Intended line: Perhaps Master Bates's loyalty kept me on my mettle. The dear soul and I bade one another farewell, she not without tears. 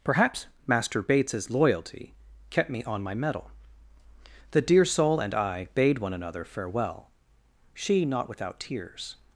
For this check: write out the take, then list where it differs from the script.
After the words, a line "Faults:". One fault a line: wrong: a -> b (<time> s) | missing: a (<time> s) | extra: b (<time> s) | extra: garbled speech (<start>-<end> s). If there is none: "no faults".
Perhaps Master Bates's loyalty kept me on my mettle. The dear soul and I bade one another farewell, she not without tears.
Faults:
no faults